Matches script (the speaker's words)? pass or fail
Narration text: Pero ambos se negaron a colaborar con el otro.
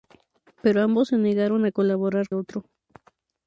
fail